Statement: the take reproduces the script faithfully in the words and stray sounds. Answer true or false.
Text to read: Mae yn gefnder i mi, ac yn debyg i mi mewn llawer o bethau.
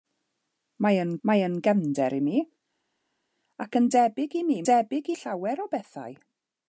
false